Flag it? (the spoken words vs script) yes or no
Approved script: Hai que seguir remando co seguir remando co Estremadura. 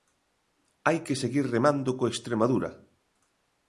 yes